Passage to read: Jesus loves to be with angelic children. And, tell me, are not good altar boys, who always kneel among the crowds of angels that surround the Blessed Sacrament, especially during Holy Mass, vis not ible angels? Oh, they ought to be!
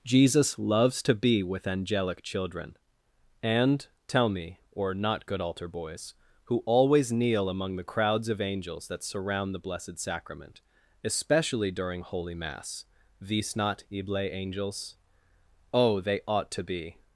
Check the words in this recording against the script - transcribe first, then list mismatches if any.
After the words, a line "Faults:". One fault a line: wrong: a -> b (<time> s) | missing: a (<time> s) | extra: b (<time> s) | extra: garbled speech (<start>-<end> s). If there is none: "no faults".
Jesus loves to be with angelic children. And, tell me, or not good altar boys, who always kneel among the crowds of angels that surround the Blessed Sacrament, especially during Holy Mass, vis not ible angels? Oh, they ought to be!
Faults:
wrong: are -> or (4.7 s)